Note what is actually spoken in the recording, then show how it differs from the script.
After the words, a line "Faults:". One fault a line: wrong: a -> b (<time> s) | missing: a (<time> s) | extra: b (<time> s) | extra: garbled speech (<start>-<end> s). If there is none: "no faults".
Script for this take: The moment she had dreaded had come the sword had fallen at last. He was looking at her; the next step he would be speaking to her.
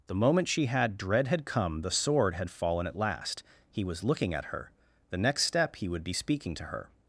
The moment she had dread had come the sword had fallen at last. He was looking at her; the next step he would be speaking to her.
Faults:
wrong: dreaded -> dread (1.0 s)